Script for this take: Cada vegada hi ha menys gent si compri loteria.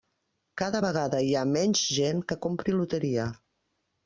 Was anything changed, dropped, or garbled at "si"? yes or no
yes